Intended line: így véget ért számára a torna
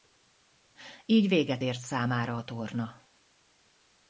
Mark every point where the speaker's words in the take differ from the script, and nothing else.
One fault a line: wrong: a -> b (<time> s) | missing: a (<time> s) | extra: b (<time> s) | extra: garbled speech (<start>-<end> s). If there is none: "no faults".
no faults